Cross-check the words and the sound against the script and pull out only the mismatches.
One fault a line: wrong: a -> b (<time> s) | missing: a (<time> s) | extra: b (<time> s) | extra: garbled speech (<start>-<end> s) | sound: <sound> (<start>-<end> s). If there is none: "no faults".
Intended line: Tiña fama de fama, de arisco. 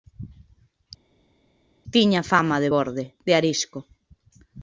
wrong: fama -> borde (2.7 s)